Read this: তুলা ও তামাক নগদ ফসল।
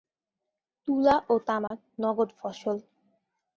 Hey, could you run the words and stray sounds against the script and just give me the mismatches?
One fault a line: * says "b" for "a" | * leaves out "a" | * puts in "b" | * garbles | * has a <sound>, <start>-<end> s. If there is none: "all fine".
* has a dropout, 1.7-1.7 s